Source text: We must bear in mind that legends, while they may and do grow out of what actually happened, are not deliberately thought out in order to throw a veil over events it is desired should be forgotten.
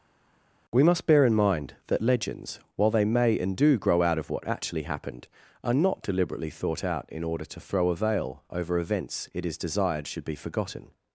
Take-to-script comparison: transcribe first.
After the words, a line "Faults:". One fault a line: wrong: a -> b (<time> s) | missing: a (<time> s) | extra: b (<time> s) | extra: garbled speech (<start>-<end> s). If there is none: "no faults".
We must bear in mind that legends, while they may and do grow out of what actually happened, are not deliberately thought out in order to throw a veil over events it is desired should be forgotten.
Faults:
no faults